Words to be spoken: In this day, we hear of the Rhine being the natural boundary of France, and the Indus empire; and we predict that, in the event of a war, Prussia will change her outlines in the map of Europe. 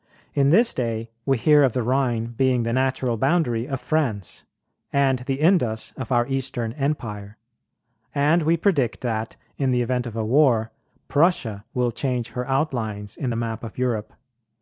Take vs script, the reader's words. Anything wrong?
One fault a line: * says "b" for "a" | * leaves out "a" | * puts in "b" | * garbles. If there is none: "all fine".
* puts in "of our Eastern"